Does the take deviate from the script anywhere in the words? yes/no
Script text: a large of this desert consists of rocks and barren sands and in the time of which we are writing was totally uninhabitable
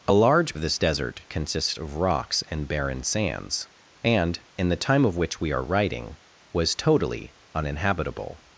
no